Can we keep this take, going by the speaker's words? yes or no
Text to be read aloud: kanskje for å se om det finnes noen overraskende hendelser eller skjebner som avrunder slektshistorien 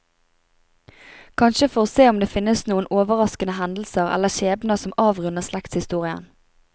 yes